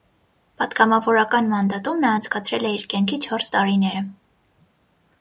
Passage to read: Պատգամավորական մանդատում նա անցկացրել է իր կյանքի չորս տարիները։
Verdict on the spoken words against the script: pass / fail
pass